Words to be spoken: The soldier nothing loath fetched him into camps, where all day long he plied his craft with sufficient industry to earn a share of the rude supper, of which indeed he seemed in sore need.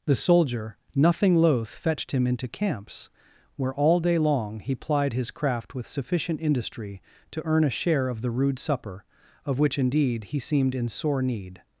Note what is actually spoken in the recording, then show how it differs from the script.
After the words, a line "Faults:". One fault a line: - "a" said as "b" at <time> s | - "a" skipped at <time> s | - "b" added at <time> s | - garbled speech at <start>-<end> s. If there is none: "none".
The soldier nothing loath fetched him into camps, where all day long he plied his craft with sufficient industry to earn a share of the rude supper, of which indeed he seemed in sore need.
Faults:
none